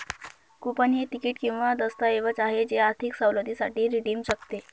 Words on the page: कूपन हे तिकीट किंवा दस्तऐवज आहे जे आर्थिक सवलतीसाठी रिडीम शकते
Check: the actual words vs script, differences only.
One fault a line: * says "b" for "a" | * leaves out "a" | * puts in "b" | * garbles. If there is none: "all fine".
all fine